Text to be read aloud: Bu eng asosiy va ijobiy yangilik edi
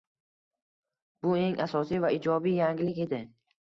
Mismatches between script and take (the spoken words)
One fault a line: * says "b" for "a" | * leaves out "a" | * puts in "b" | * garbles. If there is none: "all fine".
all fine